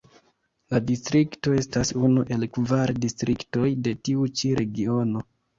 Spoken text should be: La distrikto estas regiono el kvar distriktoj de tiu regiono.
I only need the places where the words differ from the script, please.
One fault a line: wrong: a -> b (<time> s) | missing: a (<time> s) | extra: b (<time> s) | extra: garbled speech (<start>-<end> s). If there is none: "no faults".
wrong: regiono -> unu (2.1 s)
extra: ĉi (4.4 s)